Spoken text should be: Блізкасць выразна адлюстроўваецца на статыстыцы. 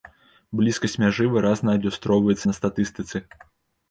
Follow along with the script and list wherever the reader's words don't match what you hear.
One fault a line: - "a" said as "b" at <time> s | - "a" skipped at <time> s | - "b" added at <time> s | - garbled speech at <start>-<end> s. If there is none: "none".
- "мяжы" added at 1.0 s